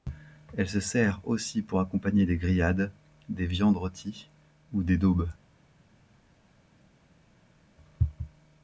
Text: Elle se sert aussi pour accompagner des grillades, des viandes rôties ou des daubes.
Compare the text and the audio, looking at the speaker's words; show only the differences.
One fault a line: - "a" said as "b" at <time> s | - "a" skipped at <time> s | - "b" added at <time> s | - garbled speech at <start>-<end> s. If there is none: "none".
none